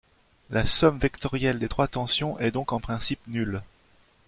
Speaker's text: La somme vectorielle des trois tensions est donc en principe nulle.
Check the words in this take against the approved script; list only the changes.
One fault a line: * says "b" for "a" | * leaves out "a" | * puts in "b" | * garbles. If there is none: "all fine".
all fine